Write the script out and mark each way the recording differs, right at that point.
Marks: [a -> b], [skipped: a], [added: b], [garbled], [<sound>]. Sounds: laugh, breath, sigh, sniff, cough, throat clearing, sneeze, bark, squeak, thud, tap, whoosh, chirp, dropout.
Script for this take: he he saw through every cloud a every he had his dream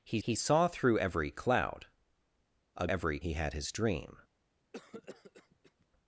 he he saw through every cloud a every he had his dream [cough]